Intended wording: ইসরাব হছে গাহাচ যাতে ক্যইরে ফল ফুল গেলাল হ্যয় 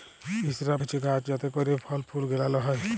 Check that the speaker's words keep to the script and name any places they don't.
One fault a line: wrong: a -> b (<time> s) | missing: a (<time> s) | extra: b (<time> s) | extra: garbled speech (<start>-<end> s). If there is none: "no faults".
no faults